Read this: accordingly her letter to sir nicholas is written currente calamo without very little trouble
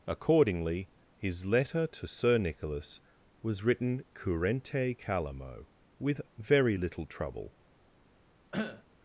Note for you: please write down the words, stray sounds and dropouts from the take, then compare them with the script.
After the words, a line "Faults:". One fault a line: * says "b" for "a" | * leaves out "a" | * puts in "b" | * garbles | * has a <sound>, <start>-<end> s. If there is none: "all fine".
accordingly his letter to sir nicholas was written currente calamo with very little trouble
Faults:
* says "his" for "her"
* says "was" for "is"
* says "with" for "without"
* has a cough, 8.5-8.8 s